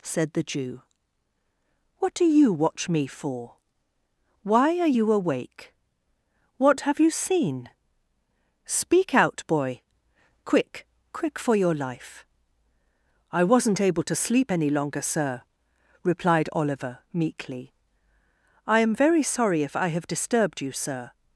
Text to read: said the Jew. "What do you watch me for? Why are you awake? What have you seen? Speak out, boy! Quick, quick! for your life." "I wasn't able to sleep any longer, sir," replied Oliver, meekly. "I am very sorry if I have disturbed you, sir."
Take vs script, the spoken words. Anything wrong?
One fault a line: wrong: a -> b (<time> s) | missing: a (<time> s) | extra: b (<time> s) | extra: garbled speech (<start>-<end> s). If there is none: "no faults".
no faults